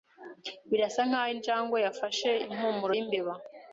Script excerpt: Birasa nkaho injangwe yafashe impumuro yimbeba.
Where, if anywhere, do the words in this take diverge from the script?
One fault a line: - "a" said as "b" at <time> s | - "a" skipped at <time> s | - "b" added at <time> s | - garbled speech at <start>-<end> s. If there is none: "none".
none